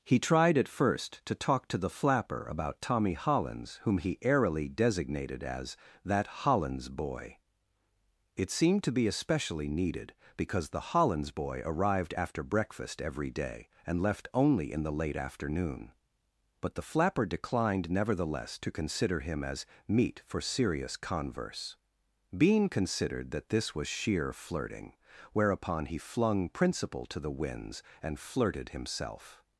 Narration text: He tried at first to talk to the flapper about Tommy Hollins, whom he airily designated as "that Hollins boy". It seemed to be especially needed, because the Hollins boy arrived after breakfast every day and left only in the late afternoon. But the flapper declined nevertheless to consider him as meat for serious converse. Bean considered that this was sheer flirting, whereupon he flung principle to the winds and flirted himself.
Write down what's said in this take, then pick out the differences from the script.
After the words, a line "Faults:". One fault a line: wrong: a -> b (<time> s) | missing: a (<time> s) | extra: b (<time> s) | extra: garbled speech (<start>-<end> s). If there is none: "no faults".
He tried at first to talk to the flapper about Tommy Hollins, whom he airily designated as "that Hollins boy". It seemed to be especially needed, because the Hollins boy arrived after breakfast every day and left only in the late afternoon. But the flapper declined nevertheless to consider him as meat for serious converse. Bean considered that this was sheer flirting, whereupon he flung principle to the winds and flirted himself.
Faults:
no faults